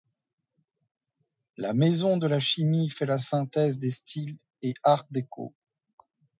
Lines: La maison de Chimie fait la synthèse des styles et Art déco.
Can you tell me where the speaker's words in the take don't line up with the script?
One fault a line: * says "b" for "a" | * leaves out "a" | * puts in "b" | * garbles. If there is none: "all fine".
* puts in "la"